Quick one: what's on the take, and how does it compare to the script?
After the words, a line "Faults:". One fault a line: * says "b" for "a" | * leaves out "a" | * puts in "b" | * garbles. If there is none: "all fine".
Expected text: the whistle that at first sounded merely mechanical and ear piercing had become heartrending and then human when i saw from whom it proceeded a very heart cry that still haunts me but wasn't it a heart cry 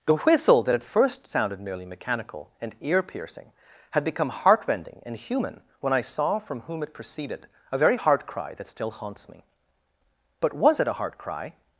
the whistle that at first sounded merely mechanical and ear piercing had become heartrending and human when i saw from whom it proceeded a very heart cry that still haunts me but was it a heart cry
Faults:
* leaves out "then"
* says "was" for "wasn't"